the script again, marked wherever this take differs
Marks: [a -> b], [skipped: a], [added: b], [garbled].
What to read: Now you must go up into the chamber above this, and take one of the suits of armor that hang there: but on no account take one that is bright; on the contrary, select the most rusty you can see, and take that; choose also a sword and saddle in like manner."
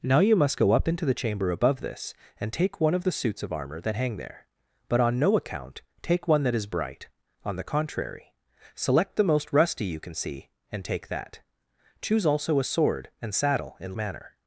Now you must go up into the chamber above this, and take one of the suits of armor that hang there: but on no account take one that is bright; on the contrary, select the most rusty you can see, and take that; choose also a sword and saddle in [skipped: like] manner."